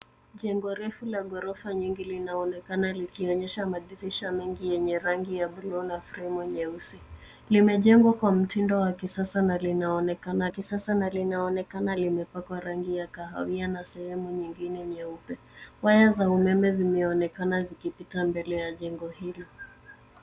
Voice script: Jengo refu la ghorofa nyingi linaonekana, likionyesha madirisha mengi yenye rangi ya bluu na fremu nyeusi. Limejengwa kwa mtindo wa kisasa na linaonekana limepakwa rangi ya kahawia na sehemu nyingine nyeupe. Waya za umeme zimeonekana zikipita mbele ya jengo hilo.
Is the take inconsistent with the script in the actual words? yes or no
yes